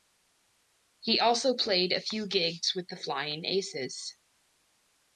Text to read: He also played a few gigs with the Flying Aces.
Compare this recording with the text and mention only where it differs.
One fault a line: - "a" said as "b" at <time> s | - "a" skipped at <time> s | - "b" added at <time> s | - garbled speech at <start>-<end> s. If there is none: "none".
none